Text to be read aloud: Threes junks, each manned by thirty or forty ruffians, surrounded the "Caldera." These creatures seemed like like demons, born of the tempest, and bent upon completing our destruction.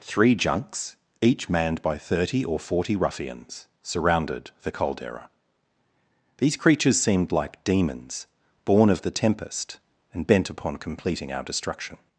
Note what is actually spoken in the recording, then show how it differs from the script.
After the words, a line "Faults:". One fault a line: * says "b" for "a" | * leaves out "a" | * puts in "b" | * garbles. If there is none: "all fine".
Three junks, each manned by thirty or forty ruffians, surrounded the "Caldera." These creatures seemed like demons, born of the tempest, and bent upon completing our destruction.
Faults:
* says "Three" for "Threes"
* leaves out "like"